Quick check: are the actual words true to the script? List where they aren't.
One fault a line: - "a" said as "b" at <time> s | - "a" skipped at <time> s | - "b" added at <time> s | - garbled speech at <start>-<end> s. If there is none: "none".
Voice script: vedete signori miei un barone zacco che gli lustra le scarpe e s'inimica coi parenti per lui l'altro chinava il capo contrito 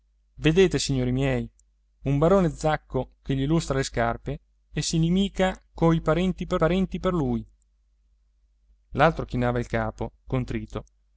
- "parenti per" added at 6.6 s